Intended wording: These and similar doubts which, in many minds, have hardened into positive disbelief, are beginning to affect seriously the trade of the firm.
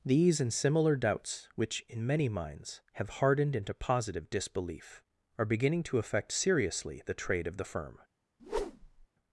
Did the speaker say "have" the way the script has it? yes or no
yes